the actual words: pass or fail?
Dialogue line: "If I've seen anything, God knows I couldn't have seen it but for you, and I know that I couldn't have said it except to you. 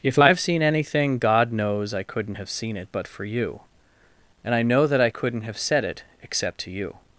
pass